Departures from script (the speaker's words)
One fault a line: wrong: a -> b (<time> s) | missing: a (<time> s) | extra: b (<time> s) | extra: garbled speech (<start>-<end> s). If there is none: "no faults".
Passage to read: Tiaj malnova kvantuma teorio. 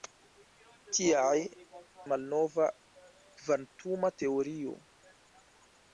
no faults